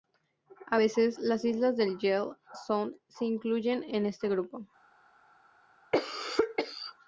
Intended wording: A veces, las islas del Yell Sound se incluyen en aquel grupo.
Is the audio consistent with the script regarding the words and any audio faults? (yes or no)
no